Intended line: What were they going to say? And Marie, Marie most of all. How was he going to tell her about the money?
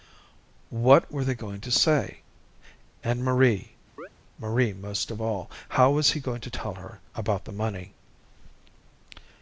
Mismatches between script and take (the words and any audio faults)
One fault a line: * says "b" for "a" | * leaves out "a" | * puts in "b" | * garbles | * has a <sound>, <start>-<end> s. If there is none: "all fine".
* has a chirp, 4.0-4.1 s